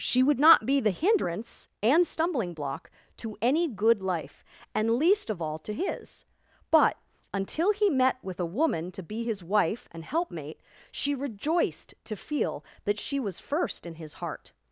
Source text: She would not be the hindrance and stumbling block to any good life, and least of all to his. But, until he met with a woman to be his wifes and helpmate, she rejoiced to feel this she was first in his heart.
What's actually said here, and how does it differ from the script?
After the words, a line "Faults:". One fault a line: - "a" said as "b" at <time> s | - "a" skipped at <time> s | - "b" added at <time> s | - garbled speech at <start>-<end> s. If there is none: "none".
She would not be the hindrance and stumbling block to any good life, and least of all to his. But, until he met with a woman to be his wife and helpmate, she rejoiced to feel that she was first in his heart.
Faults:
- "wifes" said as "wife" at 9.4 s
- "this" said as "that" at 12.9 s